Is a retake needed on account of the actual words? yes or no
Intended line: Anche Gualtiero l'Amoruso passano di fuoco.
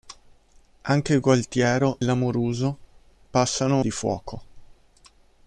no